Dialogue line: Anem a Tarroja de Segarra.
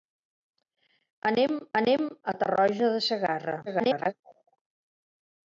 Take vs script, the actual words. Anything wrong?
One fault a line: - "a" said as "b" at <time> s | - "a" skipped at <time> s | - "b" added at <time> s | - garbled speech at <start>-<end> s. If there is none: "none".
- "anem" added at 1.8 s
- garbled speech at 3.7-4.1 s